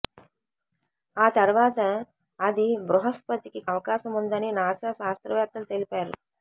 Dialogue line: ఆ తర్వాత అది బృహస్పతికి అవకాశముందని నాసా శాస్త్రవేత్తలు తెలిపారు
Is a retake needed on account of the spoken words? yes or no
no